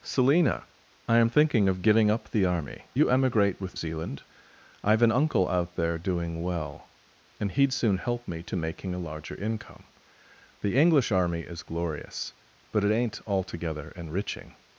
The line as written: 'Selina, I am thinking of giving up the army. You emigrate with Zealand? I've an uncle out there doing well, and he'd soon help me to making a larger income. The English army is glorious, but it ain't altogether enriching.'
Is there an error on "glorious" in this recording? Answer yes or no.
no